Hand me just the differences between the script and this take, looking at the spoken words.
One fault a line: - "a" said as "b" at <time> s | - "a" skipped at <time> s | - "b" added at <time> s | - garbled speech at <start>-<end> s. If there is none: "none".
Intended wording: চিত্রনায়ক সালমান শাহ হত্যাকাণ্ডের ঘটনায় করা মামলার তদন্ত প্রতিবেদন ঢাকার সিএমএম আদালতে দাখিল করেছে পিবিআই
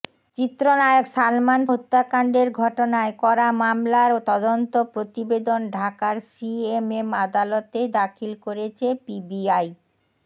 - "শাহ" skipped at 1.6 s